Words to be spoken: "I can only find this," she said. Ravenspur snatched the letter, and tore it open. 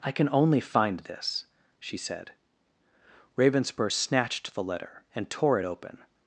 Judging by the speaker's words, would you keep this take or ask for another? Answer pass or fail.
pass